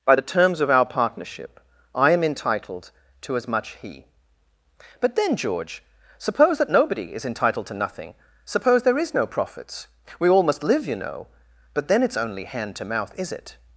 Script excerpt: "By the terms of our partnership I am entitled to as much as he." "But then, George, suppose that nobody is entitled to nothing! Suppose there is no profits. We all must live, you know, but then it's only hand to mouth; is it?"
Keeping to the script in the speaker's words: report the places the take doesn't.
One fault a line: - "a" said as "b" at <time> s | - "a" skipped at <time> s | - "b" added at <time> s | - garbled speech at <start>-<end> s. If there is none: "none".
- "as" skipped at 3.8 s